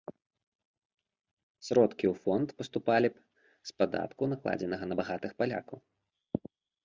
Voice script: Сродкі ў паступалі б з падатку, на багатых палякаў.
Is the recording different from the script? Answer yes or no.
yes